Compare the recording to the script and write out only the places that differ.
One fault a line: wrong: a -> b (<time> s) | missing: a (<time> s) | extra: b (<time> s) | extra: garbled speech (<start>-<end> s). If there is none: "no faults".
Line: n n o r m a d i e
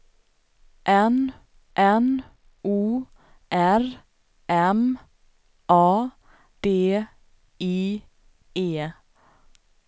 no faults